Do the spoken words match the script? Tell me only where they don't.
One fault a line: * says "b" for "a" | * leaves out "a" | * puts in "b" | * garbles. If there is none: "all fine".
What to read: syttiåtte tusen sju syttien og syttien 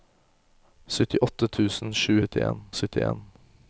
all fine